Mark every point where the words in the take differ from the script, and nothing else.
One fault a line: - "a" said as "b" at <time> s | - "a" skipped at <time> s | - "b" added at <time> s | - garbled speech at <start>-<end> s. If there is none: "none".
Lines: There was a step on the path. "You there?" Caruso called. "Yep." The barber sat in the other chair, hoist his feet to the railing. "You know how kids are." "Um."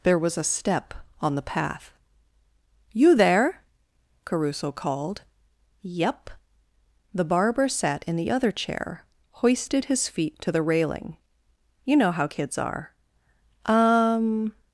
- "hoist" said as "hoisted" at 9.4 s